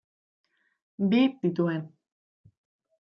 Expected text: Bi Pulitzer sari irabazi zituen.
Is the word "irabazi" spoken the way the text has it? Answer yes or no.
no